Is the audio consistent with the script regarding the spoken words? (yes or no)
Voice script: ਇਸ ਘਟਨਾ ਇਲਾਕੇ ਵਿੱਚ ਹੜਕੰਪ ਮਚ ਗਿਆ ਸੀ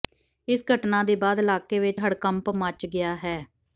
no